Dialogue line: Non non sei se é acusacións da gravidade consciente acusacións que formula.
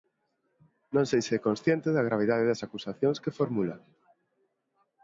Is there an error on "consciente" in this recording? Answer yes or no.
yes